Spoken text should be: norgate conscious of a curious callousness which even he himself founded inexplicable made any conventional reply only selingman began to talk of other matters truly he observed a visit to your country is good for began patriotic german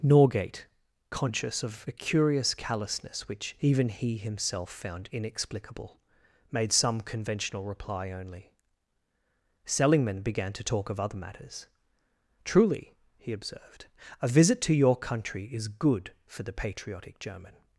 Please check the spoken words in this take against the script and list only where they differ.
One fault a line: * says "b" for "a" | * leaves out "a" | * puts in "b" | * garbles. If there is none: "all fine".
* says "found" for "founded"
* says "some" for "any"
* says "the" for "began"